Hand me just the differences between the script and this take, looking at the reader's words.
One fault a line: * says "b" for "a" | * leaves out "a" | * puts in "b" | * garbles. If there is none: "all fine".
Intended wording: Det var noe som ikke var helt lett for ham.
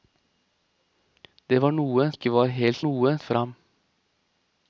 * leaves out "som"
* says "noe" for "lett"